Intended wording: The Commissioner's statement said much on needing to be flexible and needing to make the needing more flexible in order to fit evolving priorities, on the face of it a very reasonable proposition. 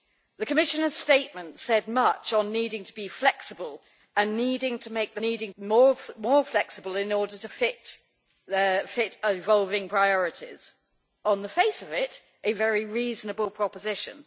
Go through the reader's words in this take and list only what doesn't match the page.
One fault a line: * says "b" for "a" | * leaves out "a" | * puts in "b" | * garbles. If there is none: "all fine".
all fine